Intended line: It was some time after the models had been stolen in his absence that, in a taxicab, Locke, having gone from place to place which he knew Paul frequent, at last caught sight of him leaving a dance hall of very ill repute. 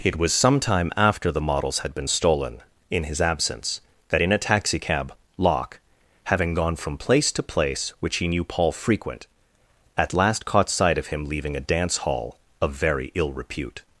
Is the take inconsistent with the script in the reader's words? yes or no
no